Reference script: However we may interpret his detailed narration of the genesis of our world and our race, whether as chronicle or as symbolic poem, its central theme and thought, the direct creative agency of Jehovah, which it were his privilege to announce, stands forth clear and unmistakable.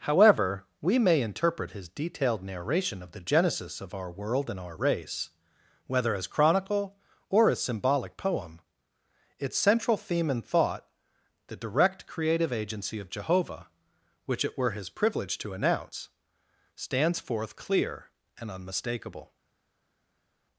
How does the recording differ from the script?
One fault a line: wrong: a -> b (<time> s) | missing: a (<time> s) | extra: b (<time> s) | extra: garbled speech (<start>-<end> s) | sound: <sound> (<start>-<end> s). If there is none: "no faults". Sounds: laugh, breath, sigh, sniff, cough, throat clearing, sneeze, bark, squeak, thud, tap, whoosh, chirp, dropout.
no faults